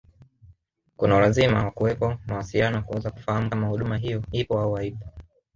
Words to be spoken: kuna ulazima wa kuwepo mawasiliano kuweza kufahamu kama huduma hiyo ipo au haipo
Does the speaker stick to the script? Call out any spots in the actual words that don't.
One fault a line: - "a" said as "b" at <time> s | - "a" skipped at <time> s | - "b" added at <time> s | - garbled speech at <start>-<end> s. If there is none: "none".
none